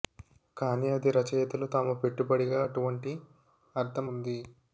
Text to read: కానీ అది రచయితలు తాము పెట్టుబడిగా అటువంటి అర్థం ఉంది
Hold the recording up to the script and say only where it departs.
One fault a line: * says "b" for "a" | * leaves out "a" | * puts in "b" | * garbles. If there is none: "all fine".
all fine